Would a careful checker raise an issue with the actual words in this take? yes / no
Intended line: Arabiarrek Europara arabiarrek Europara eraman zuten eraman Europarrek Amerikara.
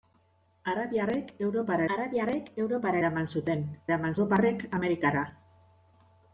no